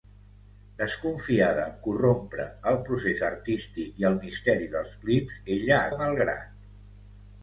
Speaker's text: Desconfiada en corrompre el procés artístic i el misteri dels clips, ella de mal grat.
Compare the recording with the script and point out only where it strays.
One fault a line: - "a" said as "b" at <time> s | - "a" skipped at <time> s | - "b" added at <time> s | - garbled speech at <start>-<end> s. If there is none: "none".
none